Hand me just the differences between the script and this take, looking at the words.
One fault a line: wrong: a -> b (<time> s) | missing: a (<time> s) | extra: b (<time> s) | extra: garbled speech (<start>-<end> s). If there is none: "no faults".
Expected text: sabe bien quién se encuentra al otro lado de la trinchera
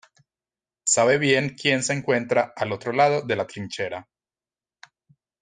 no faults